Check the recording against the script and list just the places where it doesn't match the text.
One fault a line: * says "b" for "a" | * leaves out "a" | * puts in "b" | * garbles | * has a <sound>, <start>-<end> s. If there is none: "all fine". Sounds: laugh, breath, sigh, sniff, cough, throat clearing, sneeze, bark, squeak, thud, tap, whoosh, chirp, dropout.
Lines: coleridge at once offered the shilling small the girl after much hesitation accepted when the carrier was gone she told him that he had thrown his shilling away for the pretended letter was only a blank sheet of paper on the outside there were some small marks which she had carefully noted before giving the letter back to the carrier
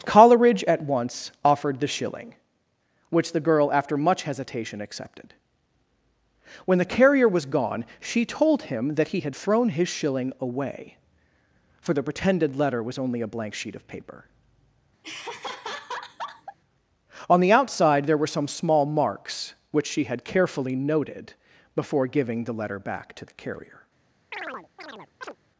* says "which" for "small"
* has a laugh, 15.0-16.6 s
* has a chirp, 24.3-25.4 s